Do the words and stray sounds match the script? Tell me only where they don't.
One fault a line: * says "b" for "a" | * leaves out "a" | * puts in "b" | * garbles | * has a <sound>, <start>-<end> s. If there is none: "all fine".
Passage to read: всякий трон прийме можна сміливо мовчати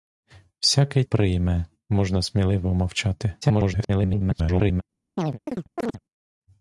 * leaves out "трон"
* garbles
* has a chirp, 5.2-6.0 s